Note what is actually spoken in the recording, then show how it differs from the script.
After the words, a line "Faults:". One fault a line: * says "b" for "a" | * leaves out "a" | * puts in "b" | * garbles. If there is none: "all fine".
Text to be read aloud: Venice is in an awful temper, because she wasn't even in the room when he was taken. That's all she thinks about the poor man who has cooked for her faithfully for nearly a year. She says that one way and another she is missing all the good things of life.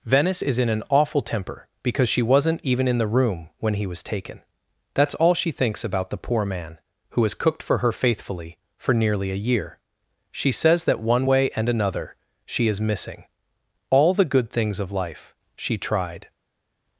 Venice is in an awful temper, because she wasn't even in the room when he was taken. That's all she thinks about the poor man who has cooked for her faithfully for nearly a year. She says that one way and another she is missing all the good things of life. She tried
Faults:
* puts in "She tried"